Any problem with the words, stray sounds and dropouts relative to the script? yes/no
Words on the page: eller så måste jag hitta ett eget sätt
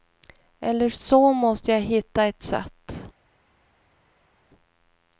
yes